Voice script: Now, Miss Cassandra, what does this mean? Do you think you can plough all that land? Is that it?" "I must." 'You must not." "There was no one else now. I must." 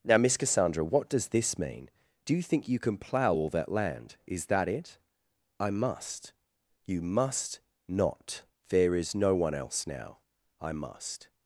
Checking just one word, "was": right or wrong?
wrong